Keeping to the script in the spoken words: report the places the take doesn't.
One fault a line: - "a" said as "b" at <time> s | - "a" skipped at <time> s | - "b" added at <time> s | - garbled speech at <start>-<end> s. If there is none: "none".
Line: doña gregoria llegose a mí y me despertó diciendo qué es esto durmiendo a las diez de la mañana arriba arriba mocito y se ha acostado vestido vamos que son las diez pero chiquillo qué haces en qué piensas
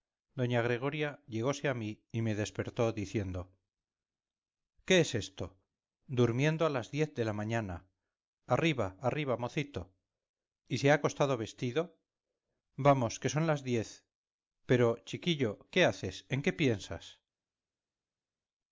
none